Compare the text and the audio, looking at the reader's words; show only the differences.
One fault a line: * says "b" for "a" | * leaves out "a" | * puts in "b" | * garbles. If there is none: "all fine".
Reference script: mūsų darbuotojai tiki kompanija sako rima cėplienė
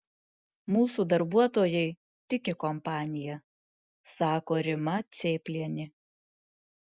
all fine